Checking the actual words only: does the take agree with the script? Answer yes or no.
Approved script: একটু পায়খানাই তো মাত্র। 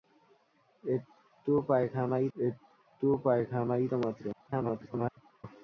no